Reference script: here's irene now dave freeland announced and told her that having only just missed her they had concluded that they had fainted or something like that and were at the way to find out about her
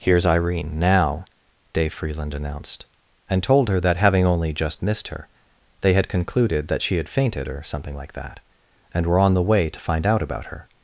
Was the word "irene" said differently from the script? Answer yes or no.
no